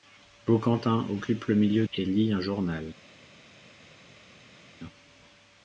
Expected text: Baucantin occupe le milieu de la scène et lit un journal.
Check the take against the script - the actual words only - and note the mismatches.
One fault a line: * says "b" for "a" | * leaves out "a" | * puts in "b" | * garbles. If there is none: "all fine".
* leaves out "de la scène"